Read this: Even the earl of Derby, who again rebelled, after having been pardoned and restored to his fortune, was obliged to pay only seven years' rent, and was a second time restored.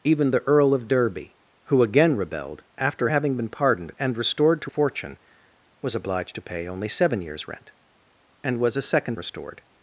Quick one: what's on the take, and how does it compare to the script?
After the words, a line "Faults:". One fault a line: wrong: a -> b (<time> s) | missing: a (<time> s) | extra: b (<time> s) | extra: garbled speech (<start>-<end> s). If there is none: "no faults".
Even the earl of Derby, who again rebelled, after having been pardoned and restored to fortune, was obliged to pay only seven years' rent, and was a second restored.
Faults:
missing: his (4.7 s)
missing: time (9.2 s)